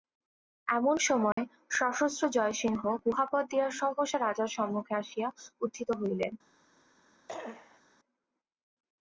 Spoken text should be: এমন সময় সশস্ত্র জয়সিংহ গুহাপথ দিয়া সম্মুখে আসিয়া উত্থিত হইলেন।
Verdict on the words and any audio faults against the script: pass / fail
fail